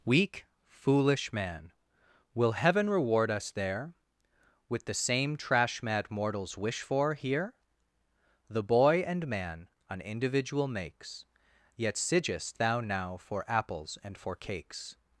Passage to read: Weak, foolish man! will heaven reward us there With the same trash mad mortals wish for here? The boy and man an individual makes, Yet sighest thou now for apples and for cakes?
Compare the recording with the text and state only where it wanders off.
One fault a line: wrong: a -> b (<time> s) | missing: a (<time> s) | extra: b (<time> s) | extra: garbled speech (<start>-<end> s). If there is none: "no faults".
no faults